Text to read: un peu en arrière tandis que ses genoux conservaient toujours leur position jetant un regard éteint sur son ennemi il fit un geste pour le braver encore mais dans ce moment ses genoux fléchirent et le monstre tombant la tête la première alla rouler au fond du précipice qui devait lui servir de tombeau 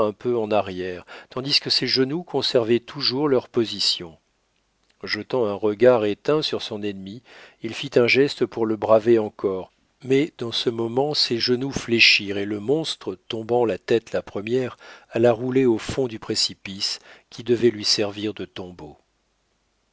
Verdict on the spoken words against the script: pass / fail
pass